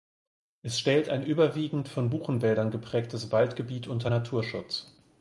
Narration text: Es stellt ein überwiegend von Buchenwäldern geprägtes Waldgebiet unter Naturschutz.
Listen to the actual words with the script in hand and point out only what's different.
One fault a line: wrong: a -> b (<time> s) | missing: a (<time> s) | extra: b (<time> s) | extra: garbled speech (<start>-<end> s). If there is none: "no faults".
no faults